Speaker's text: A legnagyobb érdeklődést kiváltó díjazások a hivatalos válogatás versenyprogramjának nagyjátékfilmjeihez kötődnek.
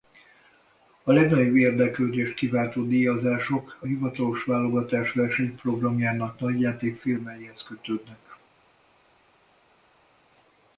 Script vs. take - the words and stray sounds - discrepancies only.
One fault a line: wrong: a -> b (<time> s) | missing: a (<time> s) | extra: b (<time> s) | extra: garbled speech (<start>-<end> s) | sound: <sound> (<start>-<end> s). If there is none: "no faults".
no faults